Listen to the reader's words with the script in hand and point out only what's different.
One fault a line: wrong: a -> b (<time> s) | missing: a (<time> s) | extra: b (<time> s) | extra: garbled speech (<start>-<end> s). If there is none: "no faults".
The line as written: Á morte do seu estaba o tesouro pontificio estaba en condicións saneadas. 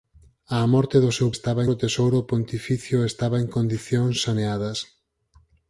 no faults